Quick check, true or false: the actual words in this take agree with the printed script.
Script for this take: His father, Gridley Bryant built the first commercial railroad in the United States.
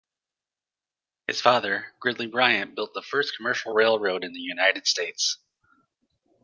true